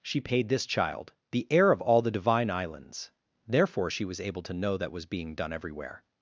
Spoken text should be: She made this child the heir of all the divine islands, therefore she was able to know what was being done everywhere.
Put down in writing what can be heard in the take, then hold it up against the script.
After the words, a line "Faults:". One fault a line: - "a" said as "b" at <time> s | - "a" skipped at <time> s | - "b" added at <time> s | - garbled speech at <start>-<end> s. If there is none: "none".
She paid this child the heir of all the divine islands, therefore she was able to know that was being done everywhere.
Faults:
- "made" said as "paid" at 0.2 s
- "what" said as "that" at 4.8 s